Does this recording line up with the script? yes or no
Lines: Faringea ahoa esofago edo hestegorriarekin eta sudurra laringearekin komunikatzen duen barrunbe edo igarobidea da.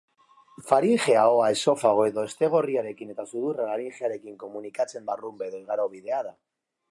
no